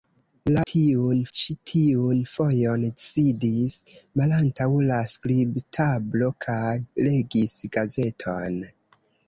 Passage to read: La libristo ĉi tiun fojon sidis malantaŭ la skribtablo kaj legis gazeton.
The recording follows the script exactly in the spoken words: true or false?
false